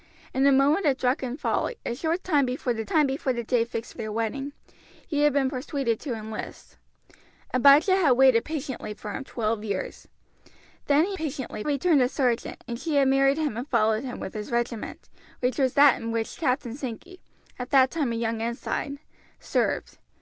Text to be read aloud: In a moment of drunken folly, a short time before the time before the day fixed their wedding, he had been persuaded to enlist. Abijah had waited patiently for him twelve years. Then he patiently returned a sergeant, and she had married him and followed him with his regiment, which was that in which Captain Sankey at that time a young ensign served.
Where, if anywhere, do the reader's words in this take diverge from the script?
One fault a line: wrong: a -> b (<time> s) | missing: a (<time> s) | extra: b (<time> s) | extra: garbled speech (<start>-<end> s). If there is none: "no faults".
no faults